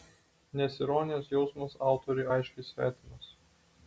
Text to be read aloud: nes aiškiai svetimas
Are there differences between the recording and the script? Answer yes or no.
yes